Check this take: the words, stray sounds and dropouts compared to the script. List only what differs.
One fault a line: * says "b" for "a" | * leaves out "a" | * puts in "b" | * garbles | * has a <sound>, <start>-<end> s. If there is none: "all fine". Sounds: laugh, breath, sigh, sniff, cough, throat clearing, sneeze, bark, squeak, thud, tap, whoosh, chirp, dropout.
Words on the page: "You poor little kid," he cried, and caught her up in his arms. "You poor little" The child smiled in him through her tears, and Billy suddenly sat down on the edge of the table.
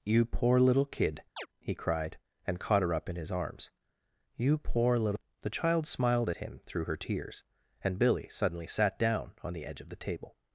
* has a chirp, 1.4-1.5 s
* says "at" for "in"